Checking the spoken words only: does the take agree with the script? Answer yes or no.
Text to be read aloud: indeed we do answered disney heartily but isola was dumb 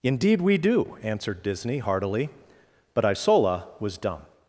yes